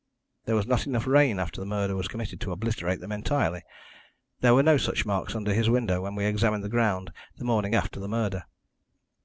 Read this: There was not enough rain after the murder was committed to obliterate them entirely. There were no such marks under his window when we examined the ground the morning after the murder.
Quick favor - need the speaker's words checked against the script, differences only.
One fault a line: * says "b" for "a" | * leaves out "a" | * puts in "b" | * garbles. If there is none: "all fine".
all fine